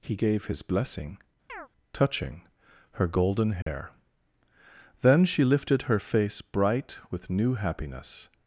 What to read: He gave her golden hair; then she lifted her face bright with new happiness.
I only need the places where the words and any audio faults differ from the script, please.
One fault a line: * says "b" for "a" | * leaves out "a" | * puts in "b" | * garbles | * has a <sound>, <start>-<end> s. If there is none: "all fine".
* puts in "his blessing touching"
* has a chirp, 1.5-1.7 s
* has a dropout, 3.6-3.7 s